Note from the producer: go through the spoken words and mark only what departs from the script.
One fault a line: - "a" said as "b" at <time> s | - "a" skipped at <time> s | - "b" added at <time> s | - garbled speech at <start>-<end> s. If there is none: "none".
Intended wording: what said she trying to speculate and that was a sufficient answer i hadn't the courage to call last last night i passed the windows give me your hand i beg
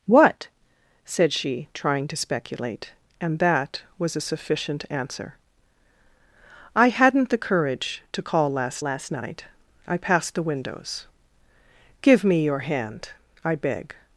none